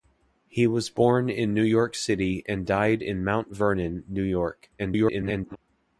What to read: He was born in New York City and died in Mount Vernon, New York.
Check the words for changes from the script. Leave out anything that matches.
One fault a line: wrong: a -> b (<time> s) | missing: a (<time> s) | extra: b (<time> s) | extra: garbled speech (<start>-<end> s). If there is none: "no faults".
extra: garbled speech (4.8-5.6 s)